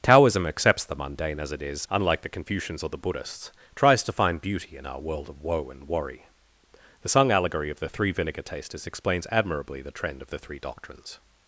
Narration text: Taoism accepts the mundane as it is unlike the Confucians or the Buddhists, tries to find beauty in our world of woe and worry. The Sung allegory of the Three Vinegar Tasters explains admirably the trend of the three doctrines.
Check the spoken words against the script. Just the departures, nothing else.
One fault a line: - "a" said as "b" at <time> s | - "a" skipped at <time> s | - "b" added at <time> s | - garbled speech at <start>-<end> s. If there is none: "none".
none